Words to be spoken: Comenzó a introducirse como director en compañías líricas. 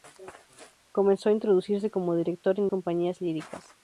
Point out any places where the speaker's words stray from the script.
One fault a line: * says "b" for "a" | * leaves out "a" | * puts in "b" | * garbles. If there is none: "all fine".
all fine